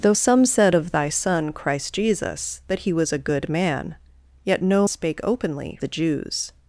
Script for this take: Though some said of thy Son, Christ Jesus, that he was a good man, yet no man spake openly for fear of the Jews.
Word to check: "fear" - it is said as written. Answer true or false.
false